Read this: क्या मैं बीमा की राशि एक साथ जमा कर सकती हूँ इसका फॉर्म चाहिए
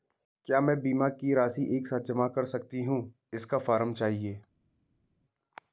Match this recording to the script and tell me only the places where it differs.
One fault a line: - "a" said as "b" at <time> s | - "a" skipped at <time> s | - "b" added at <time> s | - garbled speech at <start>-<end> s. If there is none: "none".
none